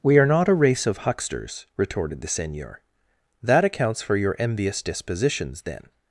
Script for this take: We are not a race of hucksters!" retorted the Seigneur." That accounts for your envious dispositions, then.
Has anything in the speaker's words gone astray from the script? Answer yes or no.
no